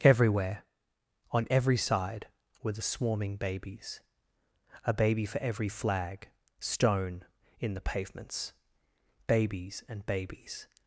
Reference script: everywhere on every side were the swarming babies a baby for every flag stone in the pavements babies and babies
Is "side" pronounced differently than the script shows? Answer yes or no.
no